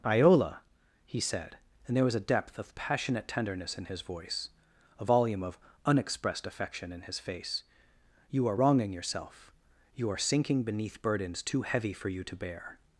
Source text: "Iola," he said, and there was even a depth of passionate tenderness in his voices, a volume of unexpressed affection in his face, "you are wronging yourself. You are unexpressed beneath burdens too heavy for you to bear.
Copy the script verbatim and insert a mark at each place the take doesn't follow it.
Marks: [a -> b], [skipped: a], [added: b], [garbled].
"Iola," he said, and there was [skipped: even] a depth of passionate tenderness in his [voices, -> voice] a volume of unexpressed affection in his face, "you are wronging yourself. You are [unexpressed -> sinking] beneath burdens too heavy for you to bear.